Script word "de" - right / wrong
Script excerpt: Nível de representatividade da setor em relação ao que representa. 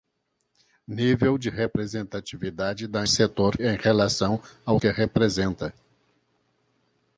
right